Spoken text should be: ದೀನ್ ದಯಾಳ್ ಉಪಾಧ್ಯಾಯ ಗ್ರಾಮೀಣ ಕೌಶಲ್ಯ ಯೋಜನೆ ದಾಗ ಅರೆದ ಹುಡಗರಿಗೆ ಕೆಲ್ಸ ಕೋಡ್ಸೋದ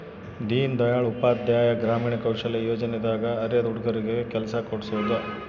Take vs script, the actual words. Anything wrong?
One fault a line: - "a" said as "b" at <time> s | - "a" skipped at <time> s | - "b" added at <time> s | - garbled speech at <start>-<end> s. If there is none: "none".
none